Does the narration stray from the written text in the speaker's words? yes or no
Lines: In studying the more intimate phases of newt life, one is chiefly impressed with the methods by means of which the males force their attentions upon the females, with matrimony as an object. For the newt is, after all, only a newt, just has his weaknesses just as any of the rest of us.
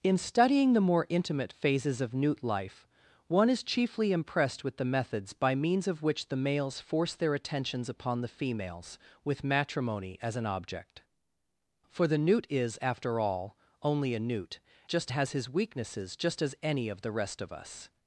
no